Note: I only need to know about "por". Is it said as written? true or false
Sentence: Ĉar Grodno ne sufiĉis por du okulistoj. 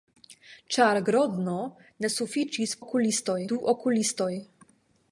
false